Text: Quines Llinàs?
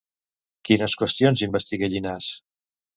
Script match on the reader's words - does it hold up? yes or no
no